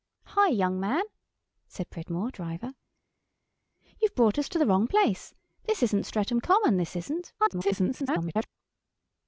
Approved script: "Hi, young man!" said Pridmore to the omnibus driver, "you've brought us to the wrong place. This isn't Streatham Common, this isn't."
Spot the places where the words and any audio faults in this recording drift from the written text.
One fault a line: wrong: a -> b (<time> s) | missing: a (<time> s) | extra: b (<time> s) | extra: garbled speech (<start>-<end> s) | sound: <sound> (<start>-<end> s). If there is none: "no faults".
missing: to the omnibus (2.3 s)
extra: garbled speech (7.4-8.5 s)